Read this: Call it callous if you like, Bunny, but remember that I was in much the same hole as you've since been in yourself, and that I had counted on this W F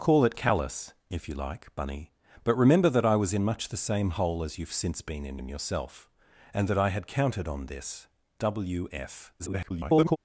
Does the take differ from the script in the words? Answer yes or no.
yes